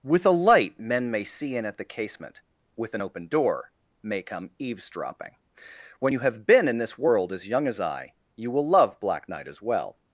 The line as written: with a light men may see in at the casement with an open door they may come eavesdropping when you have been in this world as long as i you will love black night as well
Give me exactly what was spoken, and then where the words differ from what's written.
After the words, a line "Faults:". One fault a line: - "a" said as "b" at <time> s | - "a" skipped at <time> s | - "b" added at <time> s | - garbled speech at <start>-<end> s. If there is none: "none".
with a light men may see in at the casement with an open door may come eavesdropping when you have been in this world as young as i you will love black night as well
Faults:
- "they" skipped at 3.7 s
- "long" said as "young" at 7.5 s